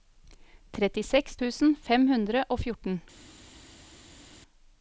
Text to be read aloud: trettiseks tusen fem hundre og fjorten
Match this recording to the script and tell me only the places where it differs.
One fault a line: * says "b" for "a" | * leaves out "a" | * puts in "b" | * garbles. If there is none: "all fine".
all fine